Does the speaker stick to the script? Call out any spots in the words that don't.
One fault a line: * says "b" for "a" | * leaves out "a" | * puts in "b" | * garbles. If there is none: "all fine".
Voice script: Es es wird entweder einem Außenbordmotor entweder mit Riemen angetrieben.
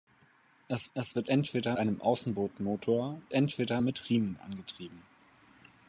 all fine